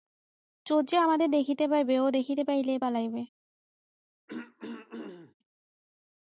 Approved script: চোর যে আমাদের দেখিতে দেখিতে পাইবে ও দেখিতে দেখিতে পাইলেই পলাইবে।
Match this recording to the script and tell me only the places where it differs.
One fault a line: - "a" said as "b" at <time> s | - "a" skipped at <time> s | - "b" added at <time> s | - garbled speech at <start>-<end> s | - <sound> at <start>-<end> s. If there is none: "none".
- "দেখিতে" skipped at 1.6 s
- "দেখিতে" skipped at 2.4 s
- throat clearing at 4.3-5.3 s